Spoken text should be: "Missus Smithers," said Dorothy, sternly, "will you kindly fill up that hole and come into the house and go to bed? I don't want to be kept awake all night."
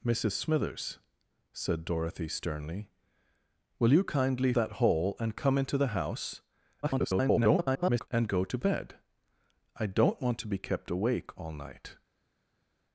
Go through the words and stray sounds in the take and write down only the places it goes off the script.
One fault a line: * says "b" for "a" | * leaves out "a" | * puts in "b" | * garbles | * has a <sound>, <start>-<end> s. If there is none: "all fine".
* leaves out "fill up"
* garbles